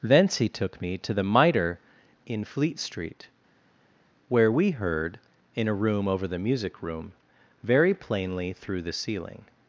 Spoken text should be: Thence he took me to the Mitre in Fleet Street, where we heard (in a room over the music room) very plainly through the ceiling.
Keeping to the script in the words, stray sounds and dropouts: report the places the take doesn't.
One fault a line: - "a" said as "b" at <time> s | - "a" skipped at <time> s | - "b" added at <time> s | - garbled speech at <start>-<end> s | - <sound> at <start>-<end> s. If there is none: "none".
none